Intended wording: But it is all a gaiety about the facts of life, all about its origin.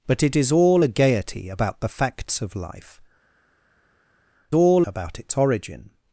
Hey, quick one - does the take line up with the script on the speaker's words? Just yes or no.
yes